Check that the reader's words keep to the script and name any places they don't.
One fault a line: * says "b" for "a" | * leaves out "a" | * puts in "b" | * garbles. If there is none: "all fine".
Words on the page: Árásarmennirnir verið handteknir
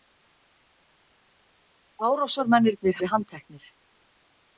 all fine